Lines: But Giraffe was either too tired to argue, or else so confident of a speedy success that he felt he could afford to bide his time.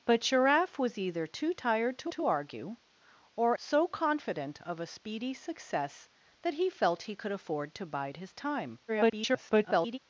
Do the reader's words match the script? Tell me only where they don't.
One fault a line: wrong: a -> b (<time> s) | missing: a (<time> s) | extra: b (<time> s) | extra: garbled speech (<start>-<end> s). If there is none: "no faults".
extra: to (2.1 s)
missing: else (3.6 s)
extra: garbled speech (8.9-10.0 s)